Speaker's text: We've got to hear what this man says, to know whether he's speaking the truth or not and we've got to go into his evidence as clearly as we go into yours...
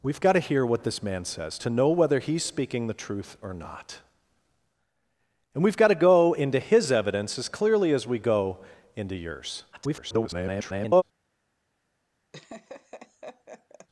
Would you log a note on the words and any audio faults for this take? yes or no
yes